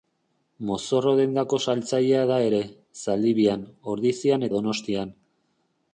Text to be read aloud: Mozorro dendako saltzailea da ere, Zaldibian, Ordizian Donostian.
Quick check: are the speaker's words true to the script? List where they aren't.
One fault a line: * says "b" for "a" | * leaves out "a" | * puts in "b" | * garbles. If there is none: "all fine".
all fine